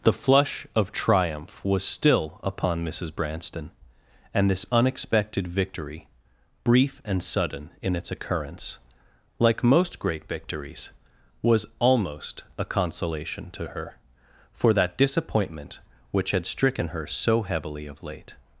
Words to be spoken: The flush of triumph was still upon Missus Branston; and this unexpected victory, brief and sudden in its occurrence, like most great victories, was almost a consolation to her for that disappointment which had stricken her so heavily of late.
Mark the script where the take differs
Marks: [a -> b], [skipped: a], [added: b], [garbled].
The flush of triumph was still upon Missus Branston; and this unexpected victory, brief and sudden in its occurrence, like most great victories, was almost a consolation to her for that disappointment which had stricken her so heavily of late.